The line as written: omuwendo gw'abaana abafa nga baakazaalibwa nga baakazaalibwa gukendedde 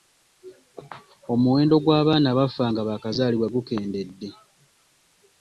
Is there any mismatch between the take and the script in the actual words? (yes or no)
yes